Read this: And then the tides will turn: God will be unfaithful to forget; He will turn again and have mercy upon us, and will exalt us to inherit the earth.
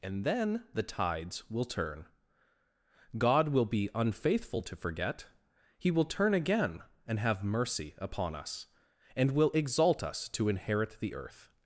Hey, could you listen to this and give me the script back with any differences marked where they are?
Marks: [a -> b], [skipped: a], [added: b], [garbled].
And then the tides will turn: God will be unfaithful to forget; He will turn again and have mercy upon us, and will exalt us to inherit the earth.